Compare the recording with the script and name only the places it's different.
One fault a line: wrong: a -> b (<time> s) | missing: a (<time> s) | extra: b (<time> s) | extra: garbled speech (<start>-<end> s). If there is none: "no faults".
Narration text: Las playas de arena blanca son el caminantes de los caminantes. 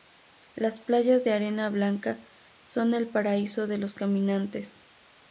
wrong: caminantes -> paraíso (3.1 s)